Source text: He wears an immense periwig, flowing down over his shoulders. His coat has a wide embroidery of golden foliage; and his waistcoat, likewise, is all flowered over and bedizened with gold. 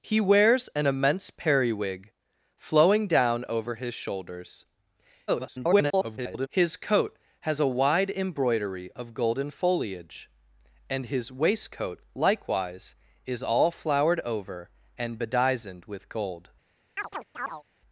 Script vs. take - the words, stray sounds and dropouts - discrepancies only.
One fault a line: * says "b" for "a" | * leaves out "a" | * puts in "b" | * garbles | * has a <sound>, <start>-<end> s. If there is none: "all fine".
* garbles
* has a chirp, 17.0-17.6 s